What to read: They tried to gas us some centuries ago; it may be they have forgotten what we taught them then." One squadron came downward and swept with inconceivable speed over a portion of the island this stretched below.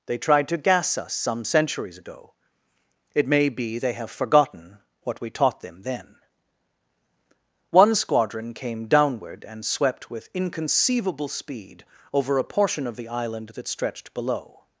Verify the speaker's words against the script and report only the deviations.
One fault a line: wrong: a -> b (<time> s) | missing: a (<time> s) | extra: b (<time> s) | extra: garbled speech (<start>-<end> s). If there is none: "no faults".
wrong: this -> that (13.6 s)